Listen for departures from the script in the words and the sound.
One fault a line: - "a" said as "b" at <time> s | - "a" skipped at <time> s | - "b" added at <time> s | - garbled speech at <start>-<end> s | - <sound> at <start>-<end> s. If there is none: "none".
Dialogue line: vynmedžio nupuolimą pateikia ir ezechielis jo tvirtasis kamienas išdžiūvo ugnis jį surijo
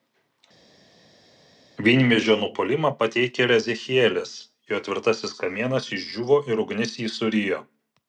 - "ir" added at 6.5 s